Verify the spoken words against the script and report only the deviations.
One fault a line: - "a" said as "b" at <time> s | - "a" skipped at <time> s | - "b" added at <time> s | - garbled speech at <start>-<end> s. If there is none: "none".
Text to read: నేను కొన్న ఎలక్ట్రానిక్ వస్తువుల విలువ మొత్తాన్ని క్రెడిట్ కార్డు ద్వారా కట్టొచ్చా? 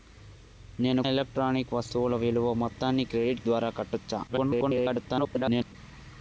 - "కొన్న" skipped at 1.0 s
- "కార్డు" skipped at 3.4 s
- garbled speech at 4.3-5.7 s